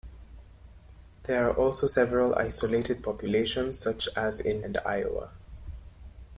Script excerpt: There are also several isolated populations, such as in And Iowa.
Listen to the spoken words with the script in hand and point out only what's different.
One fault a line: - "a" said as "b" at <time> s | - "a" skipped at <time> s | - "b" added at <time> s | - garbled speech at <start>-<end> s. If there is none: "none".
none